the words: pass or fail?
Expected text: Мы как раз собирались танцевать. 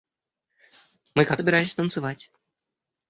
fail